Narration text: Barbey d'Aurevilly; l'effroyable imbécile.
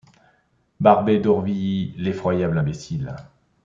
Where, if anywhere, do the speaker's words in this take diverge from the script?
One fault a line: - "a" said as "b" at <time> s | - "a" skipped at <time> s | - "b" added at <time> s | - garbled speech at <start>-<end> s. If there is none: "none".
none